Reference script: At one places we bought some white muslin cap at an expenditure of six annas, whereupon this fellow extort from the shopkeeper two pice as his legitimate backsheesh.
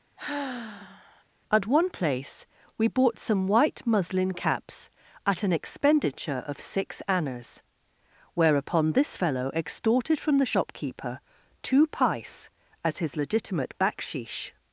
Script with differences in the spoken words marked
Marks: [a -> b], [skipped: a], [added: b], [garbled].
At one [places -> place] we bought some white muslin [cap -> caps] at an expenditure of six annas, whereupon this fellow [extort -> extorted] from the shopkeeper two pice as his legitimate backsheesh.